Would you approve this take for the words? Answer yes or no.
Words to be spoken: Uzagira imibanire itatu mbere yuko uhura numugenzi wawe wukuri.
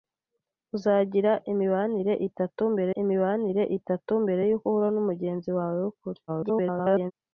no